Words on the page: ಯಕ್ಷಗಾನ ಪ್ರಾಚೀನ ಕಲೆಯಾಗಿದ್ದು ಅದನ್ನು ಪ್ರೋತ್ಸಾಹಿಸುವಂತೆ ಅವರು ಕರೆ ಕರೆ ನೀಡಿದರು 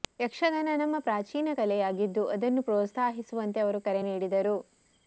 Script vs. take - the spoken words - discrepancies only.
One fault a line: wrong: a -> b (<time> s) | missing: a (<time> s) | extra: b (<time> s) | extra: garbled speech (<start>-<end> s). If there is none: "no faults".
extra: ನಮ್ಮ (0.8 s)
missing: ಕರೆ (4.0 s)